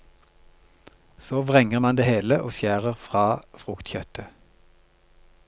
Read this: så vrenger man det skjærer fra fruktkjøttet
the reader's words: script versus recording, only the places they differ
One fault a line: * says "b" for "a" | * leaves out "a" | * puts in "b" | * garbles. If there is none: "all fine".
* puts in "hele og"